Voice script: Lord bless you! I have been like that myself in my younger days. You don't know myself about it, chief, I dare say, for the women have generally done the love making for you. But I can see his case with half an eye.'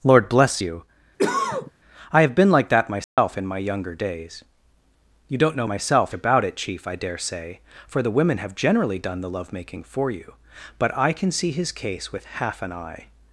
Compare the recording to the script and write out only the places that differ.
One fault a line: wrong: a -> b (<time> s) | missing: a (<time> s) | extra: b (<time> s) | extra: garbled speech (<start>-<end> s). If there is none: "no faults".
no faults